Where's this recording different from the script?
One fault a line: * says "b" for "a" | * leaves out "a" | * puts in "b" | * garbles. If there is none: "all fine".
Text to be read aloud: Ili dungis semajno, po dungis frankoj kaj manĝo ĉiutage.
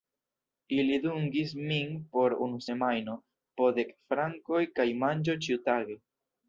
* puts in "min por unu"
* says "dek" for "dungis"